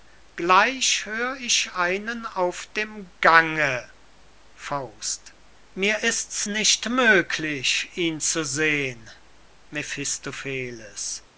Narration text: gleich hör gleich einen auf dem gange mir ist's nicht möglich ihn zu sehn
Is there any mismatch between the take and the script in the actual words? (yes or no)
yes